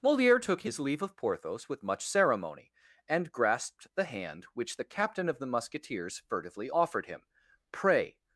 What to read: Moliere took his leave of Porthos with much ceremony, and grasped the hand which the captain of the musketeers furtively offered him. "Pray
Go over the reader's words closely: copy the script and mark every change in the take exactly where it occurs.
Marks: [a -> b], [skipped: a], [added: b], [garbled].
Moliere took his leave of Porthos with much ceremony, and grasped the hand which the captain of the musketeers furtively offered him. "Pray